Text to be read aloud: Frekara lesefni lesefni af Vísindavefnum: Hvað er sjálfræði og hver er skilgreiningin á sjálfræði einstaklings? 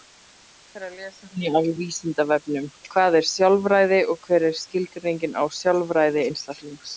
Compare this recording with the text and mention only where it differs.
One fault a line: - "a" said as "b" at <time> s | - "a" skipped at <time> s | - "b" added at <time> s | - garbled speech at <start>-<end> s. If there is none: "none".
- "lesefni" skipped at 1.5 s